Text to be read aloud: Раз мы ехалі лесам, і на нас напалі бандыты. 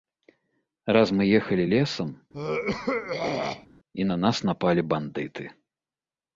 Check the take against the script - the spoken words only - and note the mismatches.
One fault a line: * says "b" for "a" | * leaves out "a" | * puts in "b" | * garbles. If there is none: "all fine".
all fine